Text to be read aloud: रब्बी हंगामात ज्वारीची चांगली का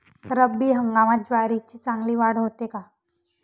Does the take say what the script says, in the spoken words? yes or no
no